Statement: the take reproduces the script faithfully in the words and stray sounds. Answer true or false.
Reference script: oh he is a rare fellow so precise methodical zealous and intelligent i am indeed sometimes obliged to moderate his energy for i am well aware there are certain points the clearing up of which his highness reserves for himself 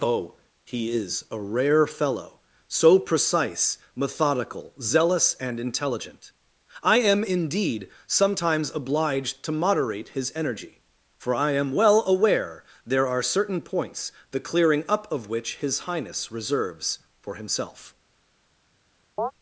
false